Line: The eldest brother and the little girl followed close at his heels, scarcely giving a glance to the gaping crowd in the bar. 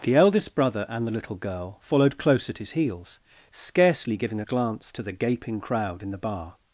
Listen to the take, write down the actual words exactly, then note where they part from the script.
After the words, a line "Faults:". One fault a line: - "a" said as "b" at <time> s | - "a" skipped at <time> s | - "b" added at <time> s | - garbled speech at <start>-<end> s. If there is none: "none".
The eldest brother and the little girl followed close at his heels, scarcely giving a glance to the gaping crowd in the bar.
Faults:
none